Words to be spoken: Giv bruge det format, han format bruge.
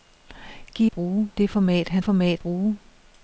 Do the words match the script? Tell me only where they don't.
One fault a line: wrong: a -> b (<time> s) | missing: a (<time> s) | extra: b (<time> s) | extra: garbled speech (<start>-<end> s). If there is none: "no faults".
no faults